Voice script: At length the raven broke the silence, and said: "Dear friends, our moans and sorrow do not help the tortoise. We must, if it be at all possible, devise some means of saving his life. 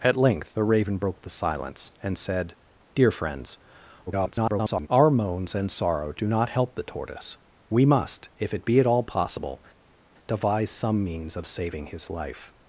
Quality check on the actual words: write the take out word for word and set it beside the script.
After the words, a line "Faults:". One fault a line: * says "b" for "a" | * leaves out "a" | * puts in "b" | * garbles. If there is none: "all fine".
At length the raven broke the silence, and said: "Dear friends, [garbled] our moans and sorrow do not help the tortoise. We must, if it be at all possible, devise some means of saving his life.
Faults:
* garbles